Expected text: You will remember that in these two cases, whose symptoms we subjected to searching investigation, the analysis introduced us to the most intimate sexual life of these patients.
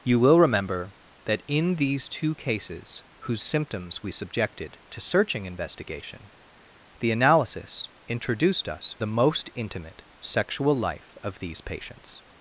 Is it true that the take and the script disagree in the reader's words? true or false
true